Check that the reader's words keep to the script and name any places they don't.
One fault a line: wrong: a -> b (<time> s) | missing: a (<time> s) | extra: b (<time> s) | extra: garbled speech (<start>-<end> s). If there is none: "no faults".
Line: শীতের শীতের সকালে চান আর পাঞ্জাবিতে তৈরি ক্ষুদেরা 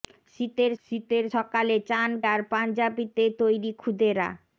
no faults